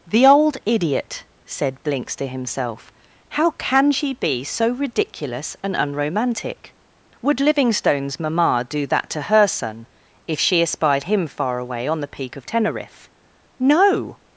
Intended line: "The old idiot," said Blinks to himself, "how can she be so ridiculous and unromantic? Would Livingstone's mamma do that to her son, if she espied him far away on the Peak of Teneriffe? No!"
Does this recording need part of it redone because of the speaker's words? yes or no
no